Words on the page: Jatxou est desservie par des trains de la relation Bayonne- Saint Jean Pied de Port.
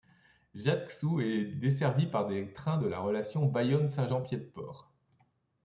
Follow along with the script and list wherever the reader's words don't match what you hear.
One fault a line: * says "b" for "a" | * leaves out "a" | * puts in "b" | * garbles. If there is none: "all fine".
all fine